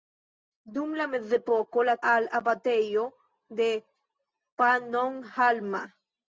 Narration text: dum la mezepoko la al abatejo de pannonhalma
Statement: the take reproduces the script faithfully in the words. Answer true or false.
true